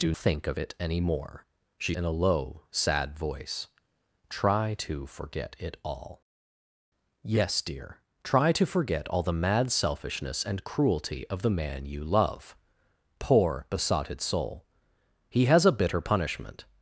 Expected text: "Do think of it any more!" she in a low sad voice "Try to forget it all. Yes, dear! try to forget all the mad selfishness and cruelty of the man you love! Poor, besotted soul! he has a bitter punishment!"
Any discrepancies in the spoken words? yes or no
no